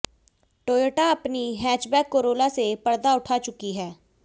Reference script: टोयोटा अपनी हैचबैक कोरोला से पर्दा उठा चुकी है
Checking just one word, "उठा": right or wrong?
right